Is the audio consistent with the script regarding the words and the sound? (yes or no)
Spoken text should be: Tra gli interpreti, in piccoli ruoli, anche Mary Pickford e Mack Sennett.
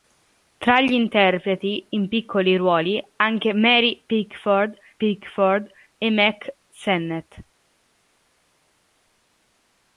no